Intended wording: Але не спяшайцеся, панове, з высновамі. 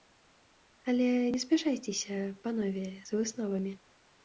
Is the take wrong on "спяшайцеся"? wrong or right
right